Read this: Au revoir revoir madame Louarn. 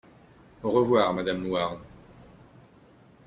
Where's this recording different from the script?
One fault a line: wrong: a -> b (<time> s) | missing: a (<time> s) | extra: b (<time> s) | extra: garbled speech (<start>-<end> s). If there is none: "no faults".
missing: revoir (1.1 s)